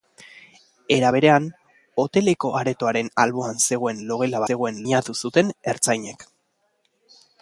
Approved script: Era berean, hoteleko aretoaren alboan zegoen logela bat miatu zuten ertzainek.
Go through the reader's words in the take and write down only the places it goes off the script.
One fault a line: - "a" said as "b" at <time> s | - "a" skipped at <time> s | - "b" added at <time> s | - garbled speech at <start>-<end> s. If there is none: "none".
- "bat" said as "zegoen" at 4.5 s